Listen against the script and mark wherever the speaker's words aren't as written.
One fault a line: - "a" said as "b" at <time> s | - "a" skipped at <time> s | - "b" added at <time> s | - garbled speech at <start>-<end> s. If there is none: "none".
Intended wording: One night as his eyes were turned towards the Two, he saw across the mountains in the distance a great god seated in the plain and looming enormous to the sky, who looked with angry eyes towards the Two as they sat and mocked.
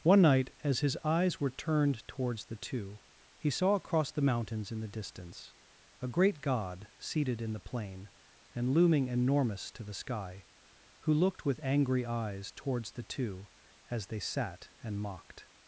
none